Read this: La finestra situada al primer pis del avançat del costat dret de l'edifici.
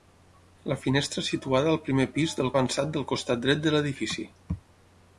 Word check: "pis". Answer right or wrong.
right